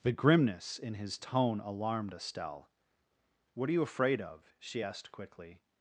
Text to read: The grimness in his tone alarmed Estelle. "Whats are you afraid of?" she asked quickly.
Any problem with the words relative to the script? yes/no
yes